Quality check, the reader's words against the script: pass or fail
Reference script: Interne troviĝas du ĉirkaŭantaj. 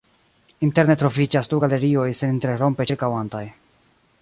fail